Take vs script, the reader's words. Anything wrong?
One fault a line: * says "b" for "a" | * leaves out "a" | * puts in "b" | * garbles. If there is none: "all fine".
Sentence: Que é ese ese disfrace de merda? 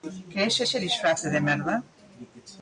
all fine